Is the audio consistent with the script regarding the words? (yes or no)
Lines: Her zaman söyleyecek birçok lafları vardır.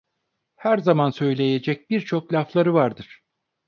yes